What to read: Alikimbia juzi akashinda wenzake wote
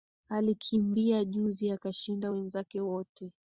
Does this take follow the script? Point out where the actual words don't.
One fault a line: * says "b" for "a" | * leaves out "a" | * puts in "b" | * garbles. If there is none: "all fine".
all fine